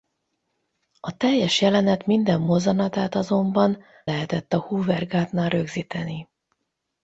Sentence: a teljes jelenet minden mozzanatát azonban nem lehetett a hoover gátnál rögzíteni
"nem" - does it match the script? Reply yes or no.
no